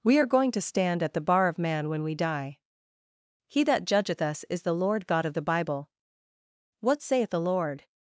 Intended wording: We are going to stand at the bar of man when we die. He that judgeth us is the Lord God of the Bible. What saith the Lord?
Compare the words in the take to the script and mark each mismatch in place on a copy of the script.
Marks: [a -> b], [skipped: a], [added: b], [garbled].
We are going to stand at the bar of man when we die. He that judgeth us is the Lord God of the Bible. What saith the Lord?